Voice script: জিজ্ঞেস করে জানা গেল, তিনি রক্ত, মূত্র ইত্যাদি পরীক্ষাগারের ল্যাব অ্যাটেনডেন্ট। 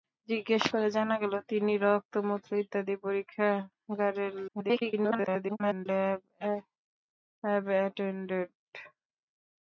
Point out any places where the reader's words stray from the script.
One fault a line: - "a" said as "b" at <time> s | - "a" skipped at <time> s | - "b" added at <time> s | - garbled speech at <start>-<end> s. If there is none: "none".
- garbled speech at 4.5-5.9 s